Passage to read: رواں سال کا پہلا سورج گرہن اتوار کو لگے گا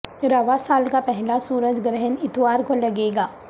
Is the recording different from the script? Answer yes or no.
no